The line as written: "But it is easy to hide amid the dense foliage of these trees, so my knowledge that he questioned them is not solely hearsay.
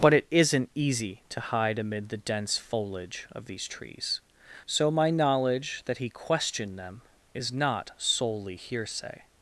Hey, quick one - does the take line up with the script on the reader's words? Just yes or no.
no